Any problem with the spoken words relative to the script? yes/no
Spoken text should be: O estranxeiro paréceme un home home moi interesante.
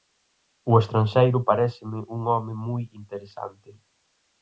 yes